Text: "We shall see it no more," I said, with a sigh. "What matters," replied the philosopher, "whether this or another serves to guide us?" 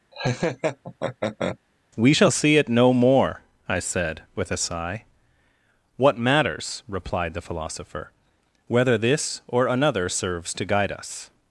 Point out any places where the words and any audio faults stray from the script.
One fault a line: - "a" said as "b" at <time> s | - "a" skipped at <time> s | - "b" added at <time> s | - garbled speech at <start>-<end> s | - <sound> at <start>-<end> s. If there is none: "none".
- laugh at 0.1-1.6 s